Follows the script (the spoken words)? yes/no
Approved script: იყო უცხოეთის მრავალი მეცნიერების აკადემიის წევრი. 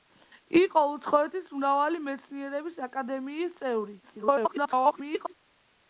no